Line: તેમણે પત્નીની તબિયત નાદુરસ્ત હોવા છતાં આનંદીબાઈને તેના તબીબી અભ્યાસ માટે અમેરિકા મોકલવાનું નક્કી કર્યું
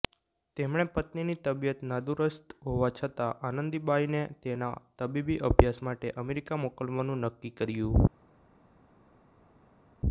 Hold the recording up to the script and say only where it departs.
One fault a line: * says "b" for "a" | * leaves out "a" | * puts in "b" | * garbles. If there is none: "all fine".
all fine